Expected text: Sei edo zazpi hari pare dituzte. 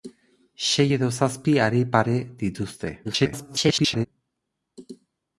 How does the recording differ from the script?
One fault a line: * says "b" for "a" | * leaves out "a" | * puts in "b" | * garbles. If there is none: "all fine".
* garbles